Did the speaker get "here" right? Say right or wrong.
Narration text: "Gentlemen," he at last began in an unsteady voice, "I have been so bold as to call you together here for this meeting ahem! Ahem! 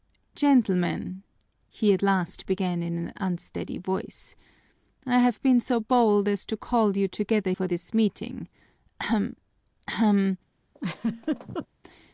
wrong